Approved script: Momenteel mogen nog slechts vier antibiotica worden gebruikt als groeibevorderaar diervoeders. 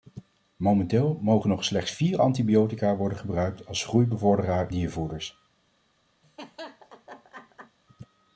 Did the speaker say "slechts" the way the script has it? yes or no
yes